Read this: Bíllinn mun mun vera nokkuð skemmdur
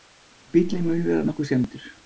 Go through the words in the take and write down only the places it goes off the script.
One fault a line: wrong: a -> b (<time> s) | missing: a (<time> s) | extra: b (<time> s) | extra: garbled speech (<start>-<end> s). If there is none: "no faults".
missing: mun (1.1 s)